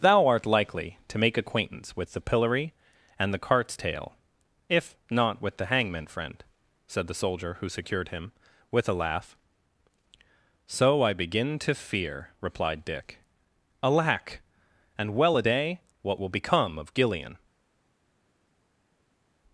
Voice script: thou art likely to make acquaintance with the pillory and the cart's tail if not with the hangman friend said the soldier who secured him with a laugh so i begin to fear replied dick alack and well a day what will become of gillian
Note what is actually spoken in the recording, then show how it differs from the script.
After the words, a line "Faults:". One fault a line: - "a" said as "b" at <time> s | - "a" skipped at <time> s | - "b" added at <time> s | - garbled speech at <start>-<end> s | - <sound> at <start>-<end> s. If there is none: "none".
thou art likely to make acquaintance with the pillory and the cart's tail if not with the hangman friend said the soldier who secured him with a laugh so i begin to fear replied dick alack and well a day what will become of gillian
Faults:
none